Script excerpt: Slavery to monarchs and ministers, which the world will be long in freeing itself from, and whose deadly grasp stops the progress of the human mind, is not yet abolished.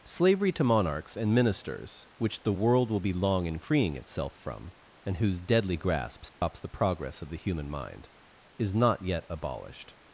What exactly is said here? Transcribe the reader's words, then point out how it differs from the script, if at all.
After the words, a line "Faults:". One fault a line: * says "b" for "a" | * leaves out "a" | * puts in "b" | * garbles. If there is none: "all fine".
Slavery to monarchs and ministers, which the world will be long in freeing itself from, and whose deadly grasp stops the progress of the human mind, is not yet abolished.
Faults:
all fine